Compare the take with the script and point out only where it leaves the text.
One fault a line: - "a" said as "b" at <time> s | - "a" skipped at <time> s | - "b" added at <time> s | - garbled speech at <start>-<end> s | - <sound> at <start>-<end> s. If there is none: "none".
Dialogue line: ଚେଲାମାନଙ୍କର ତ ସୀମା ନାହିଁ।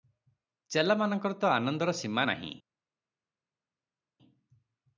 - "ଆନନ୍ଦର" added at 1.5 s